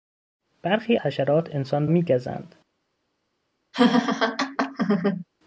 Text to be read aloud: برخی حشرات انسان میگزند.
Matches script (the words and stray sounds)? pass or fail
fail